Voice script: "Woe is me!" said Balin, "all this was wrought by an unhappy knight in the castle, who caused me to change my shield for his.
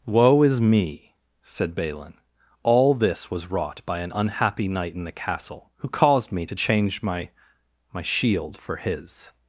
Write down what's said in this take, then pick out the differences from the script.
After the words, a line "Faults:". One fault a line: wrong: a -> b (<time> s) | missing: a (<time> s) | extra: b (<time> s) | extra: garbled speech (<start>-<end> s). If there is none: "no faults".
"Woe is me!" said Balin, "all this was wrought by an unhappy knight in the castle, who caused me to change my my shield for his.
Faults:
extra: my (7.9 s)